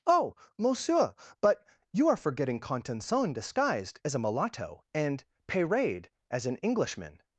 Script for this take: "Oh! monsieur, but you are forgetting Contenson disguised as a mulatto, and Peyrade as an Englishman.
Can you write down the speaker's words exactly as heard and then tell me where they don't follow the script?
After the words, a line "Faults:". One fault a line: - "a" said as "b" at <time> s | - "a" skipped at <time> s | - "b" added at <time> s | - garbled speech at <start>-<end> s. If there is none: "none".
"Oh! monsieur, but you are forgetting Contenson disguised as a mulatto, and Peyrade as an Englishman.
Faults:
none